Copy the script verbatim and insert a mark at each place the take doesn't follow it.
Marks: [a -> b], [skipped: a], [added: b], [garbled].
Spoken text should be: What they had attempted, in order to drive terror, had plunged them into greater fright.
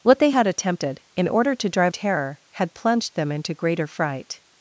What they had attempted, in order to drive terror, had plunged them into greater fright.